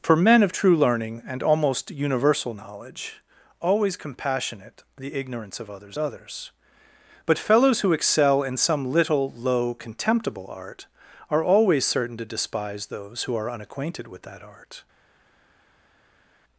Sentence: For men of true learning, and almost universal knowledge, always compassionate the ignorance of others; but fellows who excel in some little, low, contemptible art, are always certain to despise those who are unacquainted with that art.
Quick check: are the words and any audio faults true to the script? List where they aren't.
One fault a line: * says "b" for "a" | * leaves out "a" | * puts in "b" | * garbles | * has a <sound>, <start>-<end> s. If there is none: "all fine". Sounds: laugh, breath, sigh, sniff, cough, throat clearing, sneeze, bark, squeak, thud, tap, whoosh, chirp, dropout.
* puts in "others"